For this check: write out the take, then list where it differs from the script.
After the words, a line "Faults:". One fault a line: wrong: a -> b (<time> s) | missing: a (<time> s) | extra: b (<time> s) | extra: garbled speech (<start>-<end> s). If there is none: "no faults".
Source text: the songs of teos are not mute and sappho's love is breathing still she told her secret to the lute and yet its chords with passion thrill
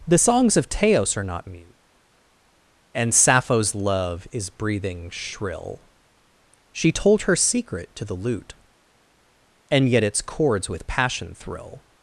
the songs of teos are not mute and sappho's love is breathing shrill she told her secret to the lute and yet its chords with passion thrill
Faults:
wrong: still -> shrill (5.1 s)